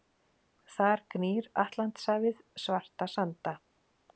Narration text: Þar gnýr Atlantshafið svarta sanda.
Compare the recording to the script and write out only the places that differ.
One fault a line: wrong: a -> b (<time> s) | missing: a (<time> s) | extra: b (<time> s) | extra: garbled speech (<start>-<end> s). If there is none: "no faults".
no faults